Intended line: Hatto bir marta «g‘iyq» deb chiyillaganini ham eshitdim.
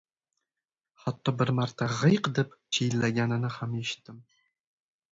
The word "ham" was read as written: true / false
true